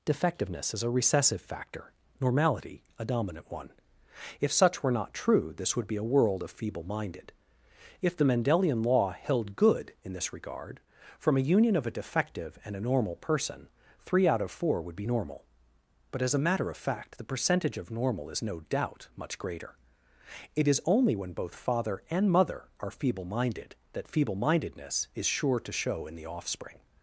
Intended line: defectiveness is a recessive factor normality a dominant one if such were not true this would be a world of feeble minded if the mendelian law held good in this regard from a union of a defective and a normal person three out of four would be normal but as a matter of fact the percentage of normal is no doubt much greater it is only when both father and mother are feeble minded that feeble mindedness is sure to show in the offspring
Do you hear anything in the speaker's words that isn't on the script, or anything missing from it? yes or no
no